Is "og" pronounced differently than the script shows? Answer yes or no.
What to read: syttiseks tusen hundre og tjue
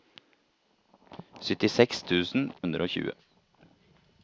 no